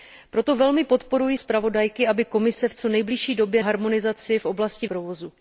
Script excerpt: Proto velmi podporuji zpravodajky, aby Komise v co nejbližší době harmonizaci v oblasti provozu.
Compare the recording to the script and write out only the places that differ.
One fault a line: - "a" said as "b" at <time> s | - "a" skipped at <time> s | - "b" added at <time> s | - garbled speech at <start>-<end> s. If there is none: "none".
none